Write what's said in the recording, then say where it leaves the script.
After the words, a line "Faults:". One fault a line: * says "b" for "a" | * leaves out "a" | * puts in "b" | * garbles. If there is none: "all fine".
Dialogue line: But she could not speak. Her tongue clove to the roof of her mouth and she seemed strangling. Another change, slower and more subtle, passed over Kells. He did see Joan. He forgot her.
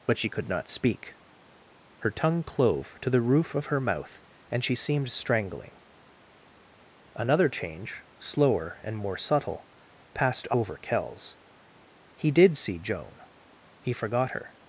But she could not speak. Her tongue clove to the roof of her mouth and she seemed strangling. Another change, slower and more subtle, passed over Kells. He did see Joan. He forgot her.
Faults:
all fine